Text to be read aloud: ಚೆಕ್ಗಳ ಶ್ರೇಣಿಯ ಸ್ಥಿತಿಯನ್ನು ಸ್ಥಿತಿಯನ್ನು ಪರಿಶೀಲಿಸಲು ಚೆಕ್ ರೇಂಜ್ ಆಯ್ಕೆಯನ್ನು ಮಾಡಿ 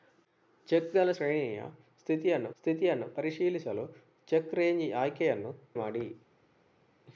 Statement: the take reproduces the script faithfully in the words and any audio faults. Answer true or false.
true